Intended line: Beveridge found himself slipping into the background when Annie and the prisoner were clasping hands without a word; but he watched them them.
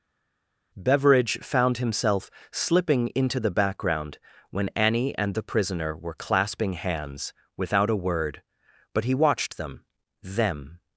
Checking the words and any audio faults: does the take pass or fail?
pass